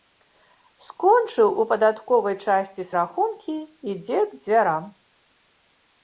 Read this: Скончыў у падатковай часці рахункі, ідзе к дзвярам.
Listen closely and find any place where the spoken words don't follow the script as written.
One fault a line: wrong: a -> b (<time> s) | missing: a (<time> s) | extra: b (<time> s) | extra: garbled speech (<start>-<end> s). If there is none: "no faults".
no faults